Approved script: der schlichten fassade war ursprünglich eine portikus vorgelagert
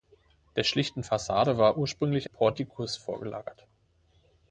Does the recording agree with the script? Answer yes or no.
no